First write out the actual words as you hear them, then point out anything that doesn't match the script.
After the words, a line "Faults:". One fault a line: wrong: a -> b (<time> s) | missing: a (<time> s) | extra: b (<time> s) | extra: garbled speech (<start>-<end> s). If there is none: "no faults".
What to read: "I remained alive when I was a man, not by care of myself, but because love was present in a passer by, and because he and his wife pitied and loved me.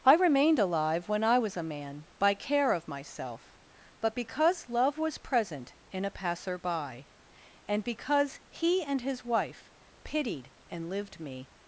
"I remained alive when I was a man, by care of myself, but because love was present in a passer by, and because he and his wife pitied and lived me.
Faults:
missing: not (2.1 s)
wrong: loved -> lived (10.9 s)